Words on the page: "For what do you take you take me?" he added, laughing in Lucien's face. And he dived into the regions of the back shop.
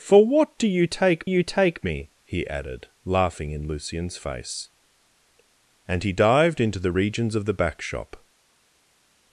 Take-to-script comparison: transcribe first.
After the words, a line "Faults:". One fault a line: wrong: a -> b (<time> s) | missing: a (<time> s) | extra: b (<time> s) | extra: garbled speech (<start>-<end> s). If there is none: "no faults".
"For what do you take you take me?" he added, laughing in Lucien's face. And he dived into the regions of the back shop.
Faults:
no faults